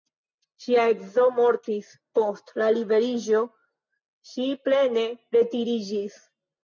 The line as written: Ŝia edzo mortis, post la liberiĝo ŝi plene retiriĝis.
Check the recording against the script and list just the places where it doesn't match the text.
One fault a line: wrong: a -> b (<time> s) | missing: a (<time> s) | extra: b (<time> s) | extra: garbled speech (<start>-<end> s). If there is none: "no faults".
no faults